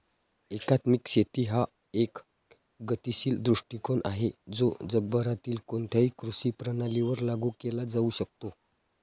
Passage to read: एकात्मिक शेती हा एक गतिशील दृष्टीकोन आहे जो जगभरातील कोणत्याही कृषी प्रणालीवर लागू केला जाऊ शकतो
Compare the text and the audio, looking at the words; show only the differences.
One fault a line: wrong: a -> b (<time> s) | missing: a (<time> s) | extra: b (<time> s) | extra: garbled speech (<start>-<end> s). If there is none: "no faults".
no faults